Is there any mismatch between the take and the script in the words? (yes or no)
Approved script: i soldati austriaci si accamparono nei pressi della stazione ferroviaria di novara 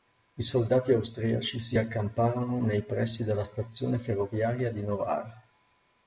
no